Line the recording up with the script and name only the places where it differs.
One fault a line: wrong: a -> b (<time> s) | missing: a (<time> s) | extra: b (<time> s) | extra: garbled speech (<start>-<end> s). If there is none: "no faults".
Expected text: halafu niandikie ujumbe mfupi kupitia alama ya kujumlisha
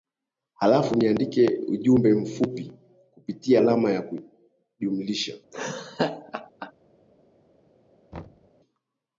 no faults